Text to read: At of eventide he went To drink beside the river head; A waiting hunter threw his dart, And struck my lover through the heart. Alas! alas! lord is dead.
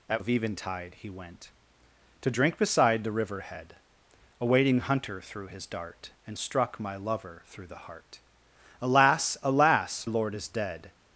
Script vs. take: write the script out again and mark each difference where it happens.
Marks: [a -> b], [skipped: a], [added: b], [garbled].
At of eventide he went To drink beside the river head; A waiting hunter threw his dart, And struck my lover through the heart. Alas! alas! lord is dead.